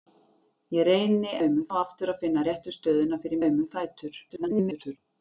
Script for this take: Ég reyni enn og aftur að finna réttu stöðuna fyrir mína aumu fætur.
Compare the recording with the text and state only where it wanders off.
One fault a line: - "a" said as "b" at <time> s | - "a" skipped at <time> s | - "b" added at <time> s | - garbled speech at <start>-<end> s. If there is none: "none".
- "enn" said as "aumu" at 1.4 s
- "mína" skipped at 3.4 s
- garbled speech at 4.3-5.0 s